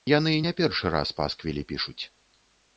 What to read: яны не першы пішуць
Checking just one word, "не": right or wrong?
right